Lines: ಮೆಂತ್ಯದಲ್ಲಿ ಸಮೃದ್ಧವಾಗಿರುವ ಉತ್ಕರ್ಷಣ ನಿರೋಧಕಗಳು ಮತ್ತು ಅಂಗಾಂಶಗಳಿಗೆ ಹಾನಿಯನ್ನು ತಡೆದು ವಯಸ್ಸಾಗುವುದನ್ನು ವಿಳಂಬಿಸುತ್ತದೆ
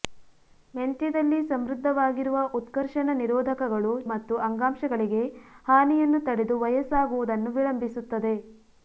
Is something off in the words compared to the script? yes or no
no